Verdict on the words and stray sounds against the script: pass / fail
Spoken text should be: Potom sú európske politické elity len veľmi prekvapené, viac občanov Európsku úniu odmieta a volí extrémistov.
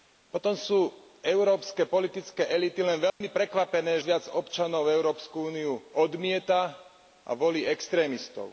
fail